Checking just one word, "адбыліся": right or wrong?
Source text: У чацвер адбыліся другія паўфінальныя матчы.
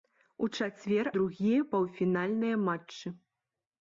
wrong